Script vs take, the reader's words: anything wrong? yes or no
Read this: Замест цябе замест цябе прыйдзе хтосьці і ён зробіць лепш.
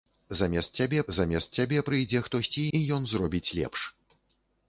no